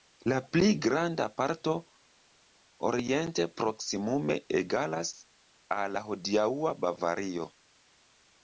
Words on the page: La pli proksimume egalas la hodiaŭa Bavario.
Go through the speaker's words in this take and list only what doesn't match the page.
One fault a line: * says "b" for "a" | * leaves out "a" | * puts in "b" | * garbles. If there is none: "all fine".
* puts in "granda parto oriente"
* puts in "al"